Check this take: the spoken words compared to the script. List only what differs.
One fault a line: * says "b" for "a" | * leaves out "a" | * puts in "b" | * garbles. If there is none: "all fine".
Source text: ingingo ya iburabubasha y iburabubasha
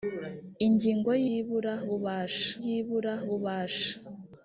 all fine